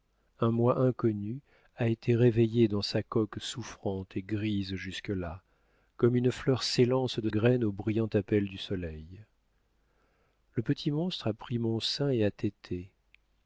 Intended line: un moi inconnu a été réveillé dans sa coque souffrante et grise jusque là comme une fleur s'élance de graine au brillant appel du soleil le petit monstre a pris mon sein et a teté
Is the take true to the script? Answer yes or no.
yes